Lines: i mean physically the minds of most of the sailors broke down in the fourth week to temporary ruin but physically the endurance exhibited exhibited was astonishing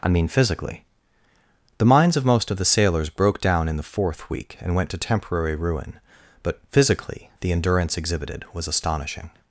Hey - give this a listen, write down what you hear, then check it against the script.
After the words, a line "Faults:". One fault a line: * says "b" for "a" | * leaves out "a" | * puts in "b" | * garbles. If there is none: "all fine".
i mean physically the minds of most of the sailors broke down in the fourth week and went to temporary ruin but physically the endurance exhibited was astonishing
Faults:
* puts in "and went"
* leaves out "exhibited"